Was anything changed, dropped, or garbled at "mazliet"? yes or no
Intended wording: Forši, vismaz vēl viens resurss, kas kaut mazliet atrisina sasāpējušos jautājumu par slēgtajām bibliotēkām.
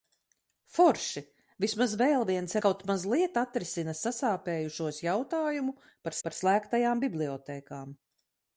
no